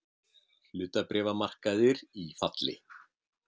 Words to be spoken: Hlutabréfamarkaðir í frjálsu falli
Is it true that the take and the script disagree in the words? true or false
true